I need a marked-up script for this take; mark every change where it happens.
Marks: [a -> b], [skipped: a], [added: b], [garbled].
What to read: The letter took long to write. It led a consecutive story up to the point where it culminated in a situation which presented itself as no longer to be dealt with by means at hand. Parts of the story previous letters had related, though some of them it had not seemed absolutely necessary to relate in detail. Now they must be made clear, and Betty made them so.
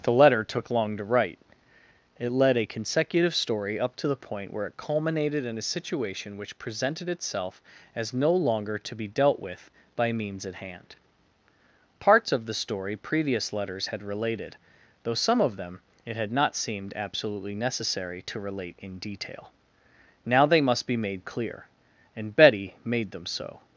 The letter took long to write. It led a consecutive story up to the point where it culminated in a situation which presented itself as no longer to be dealt with by means at hand. Parts of the story previous letters had related, though some of them it had not seemed absolutely necessary to relate in detail. Now they must be made clear, and Betty made them so.